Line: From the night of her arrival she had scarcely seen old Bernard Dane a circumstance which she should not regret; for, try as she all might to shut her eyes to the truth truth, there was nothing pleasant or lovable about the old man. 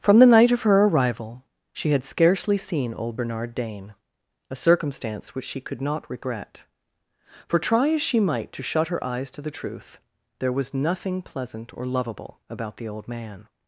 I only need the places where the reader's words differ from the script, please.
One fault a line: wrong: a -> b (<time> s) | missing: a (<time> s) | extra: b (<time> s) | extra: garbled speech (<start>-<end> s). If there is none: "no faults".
wrong: should -> could (5.6 s)
missing: all (8.2 s)
missing: truth (10.0 s)